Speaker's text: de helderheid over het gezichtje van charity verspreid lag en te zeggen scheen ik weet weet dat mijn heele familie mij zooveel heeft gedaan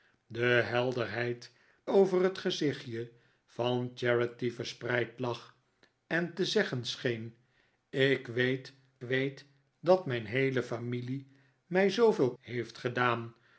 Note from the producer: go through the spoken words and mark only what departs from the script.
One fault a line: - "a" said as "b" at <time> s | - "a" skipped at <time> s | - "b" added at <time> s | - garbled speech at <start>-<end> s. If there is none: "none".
none